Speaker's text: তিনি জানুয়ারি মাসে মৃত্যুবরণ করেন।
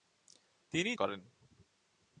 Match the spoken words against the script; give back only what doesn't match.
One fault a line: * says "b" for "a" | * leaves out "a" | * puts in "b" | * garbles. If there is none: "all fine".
* leaves out "জানুয়ারি মাসে মৃত্যুবরণ"